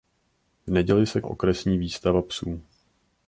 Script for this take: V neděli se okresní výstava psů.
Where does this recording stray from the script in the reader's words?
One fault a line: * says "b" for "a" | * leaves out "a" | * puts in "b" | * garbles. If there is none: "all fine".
all fine